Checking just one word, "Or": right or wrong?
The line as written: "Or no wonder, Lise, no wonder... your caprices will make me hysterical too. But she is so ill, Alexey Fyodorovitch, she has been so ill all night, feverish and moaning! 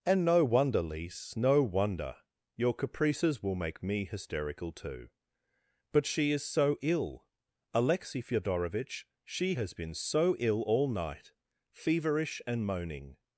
wrong